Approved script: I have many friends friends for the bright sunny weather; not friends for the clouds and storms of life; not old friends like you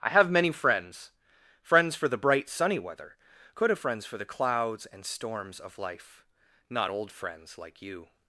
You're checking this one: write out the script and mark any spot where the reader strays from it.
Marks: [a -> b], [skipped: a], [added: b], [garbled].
I have many friends friends for the bright sunny weather; [not -> could have] friends for the clouds and storms of life; not old friends like you